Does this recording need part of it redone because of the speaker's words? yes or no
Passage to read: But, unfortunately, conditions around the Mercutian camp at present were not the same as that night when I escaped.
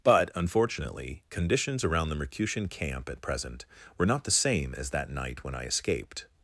no